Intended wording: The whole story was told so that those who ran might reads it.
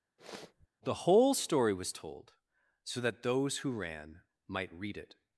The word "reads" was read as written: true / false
false